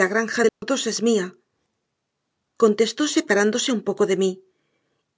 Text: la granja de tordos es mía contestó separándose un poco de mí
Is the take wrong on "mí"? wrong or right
right